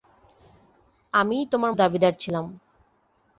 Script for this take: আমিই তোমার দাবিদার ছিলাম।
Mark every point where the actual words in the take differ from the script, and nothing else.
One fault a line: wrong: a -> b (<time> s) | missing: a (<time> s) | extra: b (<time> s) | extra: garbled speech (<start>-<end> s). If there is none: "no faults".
no faults